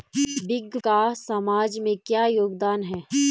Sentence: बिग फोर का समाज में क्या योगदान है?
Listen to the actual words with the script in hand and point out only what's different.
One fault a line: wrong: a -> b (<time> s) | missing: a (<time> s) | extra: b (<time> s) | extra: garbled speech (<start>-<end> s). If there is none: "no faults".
missing: फोर (0.8 s)